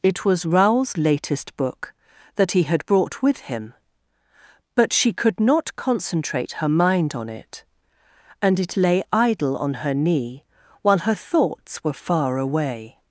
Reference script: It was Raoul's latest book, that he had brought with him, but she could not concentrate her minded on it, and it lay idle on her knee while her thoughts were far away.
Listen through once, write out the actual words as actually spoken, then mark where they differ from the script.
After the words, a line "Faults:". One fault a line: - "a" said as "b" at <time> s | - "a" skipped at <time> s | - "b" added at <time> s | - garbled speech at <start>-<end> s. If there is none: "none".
It was Raoul's latest book, that he had brought with him, but she could not concentrate her mind on it, and it lay idle on her knee while her thoughts were far away.
Faults:
- "minded" said as "mind" at 6.7 s